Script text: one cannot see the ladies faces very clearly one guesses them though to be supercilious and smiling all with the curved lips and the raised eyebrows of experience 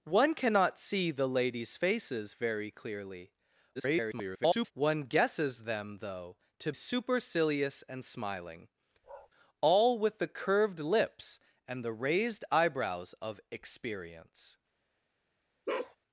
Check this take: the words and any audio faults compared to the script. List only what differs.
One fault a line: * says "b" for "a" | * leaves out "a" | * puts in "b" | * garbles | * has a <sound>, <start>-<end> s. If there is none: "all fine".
* garbles
* leaves out "be"
* has a bark, 9.0-9.3 s
* has a bark, 15.7-16.0 s